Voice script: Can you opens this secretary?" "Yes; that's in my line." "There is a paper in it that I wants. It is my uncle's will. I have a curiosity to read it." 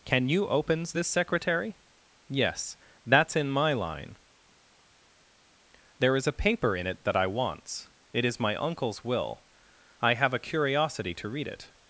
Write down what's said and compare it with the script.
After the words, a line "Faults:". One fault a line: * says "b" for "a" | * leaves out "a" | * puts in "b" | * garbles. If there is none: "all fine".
Can you opens this secretary?" "Yes; that's in my line." "There is a paper in it that I wants. It is my uncle's will. I have a curiosity to read it."
Faults:
all fine